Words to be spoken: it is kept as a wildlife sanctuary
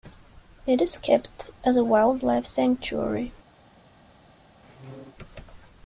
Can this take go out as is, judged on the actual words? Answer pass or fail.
pass